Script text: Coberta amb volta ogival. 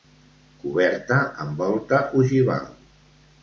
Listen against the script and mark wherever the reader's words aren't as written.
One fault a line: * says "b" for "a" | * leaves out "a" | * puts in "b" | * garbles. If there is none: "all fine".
all fine